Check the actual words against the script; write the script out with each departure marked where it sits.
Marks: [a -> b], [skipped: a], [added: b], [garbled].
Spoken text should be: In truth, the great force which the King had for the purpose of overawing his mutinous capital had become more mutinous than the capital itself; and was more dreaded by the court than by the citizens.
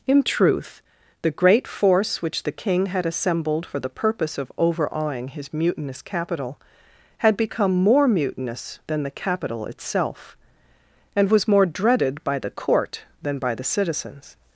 In truth, the great force which the King had [added: assembled] for the purpose of overawing his mutinous capital had become more mutinous than the capital itself; and was more dreaded by the court than by the citizens.